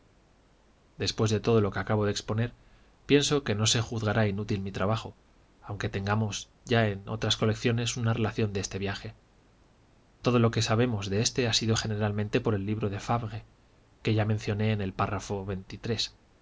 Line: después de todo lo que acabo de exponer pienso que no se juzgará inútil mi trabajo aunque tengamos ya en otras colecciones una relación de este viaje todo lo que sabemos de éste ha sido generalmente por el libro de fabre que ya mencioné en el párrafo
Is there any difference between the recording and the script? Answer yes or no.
no